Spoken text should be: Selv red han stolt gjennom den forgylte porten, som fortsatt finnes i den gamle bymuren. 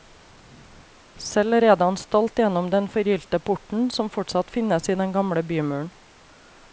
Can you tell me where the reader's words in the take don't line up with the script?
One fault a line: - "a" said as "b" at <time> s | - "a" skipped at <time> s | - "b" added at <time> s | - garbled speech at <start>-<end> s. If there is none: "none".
none